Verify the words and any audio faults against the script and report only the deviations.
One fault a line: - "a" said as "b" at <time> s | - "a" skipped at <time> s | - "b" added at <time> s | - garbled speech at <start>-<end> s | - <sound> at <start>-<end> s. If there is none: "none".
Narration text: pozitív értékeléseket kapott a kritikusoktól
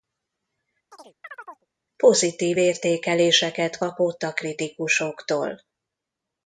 - chirp at 0.9-1.7 s